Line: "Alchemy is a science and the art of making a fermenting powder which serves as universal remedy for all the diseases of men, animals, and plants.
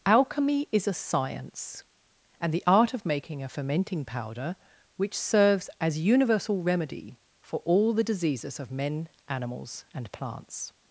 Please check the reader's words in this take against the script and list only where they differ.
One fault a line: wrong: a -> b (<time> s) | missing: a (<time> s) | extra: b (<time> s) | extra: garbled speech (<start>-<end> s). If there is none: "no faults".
no faults